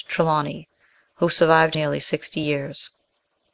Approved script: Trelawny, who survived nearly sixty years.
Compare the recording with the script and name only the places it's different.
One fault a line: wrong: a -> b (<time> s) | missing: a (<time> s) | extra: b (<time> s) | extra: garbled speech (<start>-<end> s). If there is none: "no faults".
no faults